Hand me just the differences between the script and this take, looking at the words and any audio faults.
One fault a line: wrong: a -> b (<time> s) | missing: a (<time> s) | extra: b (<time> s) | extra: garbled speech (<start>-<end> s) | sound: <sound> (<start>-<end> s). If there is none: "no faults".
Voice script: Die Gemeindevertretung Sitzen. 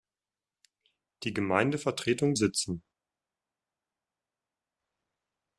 no faults